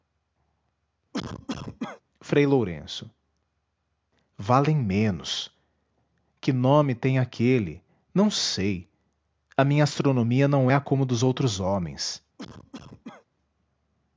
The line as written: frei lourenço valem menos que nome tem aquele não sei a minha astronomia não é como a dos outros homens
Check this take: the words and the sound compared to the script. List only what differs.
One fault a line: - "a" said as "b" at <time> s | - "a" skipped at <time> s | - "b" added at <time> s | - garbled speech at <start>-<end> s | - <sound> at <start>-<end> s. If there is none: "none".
- cough at 1.1-2.0 s
- cough at 12.4-13.3 s